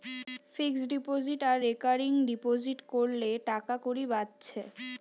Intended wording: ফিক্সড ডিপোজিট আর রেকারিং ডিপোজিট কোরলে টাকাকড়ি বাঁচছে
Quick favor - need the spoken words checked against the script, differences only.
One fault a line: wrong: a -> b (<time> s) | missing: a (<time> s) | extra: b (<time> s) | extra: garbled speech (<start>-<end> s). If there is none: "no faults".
no faults